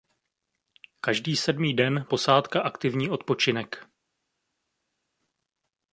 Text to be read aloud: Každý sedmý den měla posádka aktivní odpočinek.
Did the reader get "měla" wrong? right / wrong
wrong